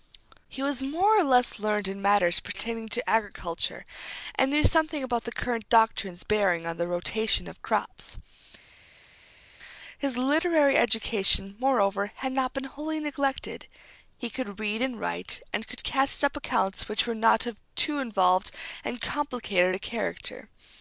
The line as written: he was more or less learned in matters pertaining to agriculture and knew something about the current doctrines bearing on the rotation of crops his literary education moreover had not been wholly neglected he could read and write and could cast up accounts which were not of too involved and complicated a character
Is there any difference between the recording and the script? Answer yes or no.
no